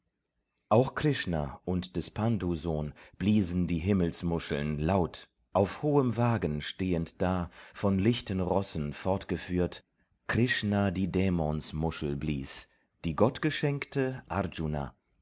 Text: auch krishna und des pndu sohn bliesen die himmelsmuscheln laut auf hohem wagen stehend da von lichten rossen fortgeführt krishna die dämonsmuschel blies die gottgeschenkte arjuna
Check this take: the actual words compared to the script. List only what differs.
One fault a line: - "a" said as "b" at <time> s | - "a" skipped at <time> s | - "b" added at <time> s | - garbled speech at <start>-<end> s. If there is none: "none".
none